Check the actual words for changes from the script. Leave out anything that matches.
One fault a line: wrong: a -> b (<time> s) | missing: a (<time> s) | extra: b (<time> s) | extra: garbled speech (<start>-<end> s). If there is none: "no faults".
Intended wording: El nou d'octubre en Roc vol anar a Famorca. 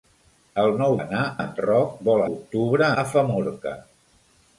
wrong: d'octubre -> anar (1.0 s)
wrong: anar -> d'octubre (2.3 s)